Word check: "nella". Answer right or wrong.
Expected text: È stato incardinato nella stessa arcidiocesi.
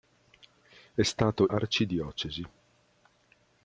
wrong